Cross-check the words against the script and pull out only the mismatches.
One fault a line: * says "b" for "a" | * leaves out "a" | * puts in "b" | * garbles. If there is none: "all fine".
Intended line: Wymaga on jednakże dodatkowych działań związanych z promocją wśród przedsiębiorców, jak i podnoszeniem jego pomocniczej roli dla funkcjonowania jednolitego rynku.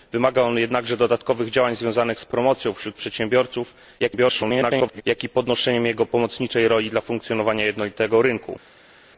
* garbles